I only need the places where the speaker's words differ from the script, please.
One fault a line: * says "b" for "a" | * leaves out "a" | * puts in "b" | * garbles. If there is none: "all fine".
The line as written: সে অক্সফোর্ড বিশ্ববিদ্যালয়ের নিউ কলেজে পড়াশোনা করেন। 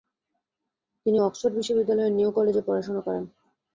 * says "তিনি" for "সে"